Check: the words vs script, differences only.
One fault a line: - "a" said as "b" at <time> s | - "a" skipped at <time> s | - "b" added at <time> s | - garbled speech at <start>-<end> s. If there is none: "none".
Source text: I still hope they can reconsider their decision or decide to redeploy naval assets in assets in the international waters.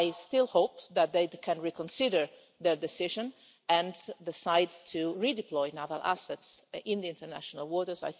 - "that" added at 0.9 s
- "or" said as "and" at 3.7 s
- "assets in" skipped at 7.0 s